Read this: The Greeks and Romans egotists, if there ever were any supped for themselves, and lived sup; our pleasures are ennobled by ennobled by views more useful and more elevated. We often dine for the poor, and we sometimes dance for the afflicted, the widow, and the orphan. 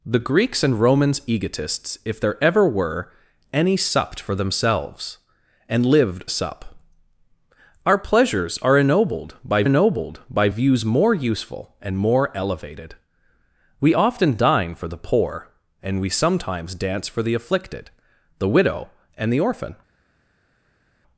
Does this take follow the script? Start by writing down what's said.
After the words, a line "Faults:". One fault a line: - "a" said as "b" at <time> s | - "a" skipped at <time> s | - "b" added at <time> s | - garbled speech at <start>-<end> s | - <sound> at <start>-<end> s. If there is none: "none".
The Greeks and Romans egotists, if there ever were any supped for themselves, and lived sup; our pleasures are ennobled by ennobled by views more useful and more elevated. We often dine for the poor, and we sometimes dance for the afflicted, the widow, and the orphan.
Faults:
none